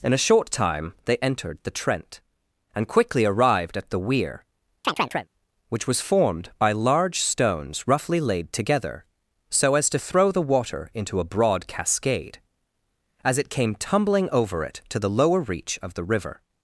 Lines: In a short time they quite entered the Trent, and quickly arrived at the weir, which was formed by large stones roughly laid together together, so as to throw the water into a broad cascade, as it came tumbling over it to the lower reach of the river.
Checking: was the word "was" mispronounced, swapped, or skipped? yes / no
no